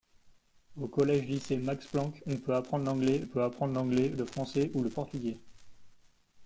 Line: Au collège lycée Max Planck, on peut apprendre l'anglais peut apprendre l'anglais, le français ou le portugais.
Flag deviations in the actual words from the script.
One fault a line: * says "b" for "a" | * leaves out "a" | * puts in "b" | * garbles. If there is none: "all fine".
all fine